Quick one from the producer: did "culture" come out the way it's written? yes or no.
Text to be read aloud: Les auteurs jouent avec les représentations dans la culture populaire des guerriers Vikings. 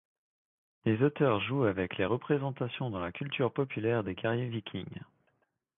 yes